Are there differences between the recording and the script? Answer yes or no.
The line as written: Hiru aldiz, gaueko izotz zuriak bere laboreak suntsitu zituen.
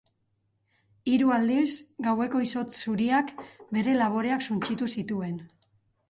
no